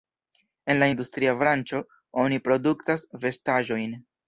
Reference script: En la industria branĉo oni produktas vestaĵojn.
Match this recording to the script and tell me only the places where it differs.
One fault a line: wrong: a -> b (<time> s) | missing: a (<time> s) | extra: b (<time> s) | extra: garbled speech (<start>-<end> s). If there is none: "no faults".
no faults